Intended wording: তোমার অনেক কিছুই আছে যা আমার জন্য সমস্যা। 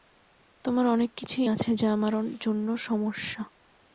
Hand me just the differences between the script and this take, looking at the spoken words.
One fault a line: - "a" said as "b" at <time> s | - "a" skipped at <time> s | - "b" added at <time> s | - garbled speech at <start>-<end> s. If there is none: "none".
none